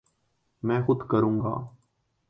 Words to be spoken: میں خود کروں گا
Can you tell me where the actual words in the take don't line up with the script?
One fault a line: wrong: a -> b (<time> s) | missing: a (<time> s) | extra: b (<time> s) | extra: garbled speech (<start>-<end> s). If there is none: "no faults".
no faults